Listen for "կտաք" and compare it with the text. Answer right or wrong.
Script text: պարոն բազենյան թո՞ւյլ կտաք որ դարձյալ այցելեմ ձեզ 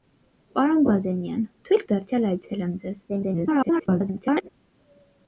wrong